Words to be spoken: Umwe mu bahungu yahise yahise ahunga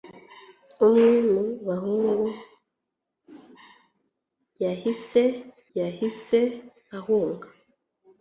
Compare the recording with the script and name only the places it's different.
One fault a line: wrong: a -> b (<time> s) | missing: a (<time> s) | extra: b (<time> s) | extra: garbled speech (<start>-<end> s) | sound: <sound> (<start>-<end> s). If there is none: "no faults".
no faults